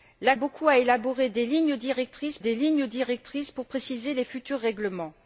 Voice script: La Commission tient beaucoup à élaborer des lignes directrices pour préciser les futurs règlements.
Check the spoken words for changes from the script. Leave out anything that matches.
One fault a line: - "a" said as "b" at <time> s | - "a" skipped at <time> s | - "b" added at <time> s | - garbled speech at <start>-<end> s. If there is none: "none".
- "Commission tient" skipped at 0.3 s
- "des lignes directrices" added at 2.4 s